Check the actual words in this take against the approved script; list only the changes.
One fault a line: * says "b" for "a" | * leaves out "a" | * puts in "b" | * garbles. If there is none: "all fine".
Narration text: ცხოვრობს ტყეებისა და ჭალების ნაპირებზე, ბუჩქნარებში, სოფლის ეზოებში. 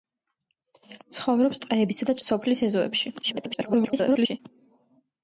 * leaves out "ჭალების ნაპირებზე ბუჩქნარებში"
* garbles